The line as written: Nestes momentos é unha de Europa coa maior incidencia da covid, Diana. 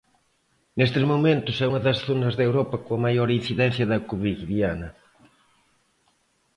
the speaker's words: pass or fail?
fail